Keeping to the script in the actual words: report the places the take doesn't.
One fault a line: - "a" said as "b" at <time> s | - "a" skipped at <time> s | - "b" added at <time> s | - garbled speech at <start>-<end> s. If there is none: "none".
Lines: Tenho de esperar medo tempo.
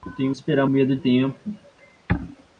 none